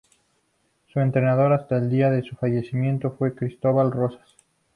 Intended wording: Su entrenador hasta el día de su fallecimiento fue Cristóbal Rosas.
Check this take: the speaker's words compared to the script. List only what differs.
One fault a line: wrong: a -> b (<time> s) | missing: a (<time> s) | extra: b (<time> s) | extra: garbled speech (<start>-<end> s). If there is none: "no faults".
no faults